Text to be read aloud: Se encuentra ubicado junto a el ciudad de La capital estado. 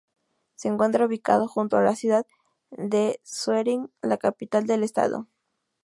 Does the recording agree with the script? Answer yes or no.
no